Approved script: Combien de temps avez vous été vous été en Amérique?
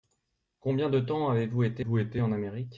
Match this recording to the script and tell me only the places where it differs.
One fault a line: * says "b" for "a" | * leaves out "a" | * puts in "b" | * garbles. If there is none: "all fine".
all fine